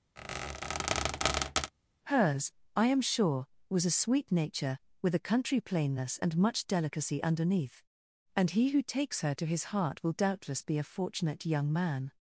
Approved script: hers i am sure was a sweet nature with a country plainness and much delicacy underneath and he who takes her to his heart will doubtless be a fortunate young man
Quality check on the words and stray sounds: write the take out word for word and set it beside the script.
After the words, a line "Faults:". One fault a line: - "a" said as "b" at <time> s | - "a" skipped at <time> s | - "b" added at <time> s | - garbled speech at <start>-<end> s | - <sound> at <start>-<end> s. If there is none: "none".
hers i am sure was a sweet nature with a country plainness and much delicacy underneath and he who takes her to his heart will doubtless be a fortunate young man
Faults:
- squeak at 0.2-1.7 s